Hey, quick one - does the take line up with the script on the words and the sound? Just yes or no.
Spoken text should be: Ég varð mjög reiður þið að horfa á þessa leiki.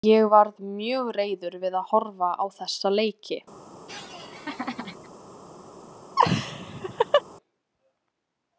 no